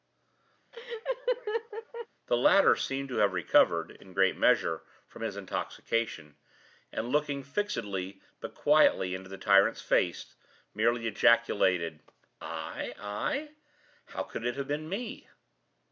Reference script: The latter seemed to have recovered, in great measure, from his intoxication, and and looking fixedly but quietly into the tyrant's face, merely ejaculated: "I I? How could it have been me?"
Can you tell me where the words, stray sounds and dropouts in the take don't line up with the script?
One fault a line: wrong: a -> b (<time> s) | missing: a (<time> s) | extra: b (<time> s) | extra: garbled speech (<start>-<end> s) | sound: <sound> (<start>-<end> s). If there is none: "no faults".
sound: laugh (0.7-2.1 s)
missing: and (7.1 s)